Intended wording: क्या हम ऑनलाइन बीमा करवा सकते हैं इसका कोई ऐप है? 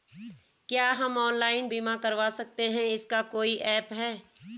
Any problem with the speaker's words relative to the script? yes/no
no